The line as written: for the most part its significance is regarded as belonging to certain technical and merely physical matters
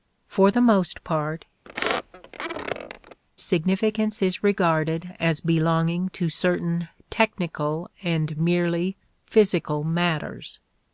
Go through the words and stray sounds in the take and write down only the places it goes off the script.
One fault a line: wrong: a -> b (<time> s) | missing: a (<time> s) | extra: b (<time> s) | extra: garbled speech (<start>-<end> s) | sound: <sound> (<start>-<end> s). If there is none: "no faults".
missing: its (1.4 s)
sound: squeak (1.6-3.2 s)